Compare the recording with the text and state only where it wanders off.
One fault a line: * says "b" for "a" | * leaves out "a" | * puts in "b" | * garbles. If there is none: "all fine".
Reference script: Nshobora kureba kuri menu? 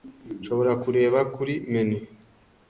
all fine